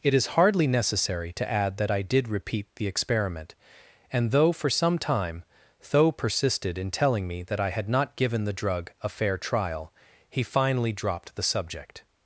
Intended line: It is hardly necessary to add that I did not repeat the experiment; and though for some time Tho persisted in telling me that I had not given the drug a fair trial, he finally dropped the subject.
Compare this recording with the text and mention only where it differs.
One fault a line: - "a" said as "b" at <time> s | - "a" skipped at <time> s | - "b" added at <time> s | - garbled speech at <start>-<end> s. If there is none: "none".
- "not" skipped at 2.3 s